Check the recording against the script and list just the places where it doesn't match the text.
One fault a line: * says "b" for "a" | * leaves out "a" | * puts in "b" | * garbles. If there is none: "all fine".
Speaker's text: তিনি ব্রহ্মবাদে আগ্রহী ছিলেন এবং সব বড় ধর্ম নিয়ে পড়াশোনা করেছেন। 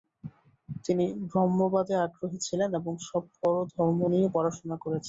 all fine